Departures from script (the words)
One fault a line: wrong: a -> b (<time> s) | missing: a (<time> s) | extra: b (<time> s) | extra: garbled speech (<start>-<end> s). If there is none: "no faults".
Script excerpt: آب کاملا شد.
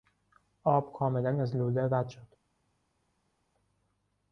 extra: از لوله رد (1.4 s)